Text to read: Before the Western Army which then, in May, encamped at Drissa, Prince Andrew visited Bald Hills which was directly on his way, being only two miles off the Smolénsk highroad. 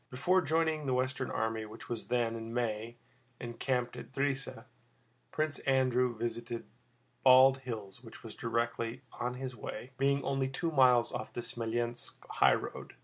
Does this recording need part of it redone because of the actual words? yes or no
yes